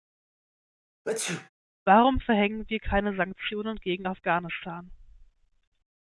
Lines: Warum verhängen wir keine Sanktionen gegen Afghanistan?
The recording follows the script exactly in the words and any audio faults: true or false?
false